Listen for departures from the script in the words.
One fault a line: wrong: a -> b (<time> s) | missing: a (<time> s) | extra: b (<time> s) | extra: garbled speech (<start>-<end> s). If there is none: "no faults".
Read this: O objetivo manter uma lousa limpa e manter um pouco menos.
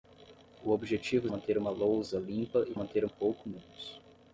no faults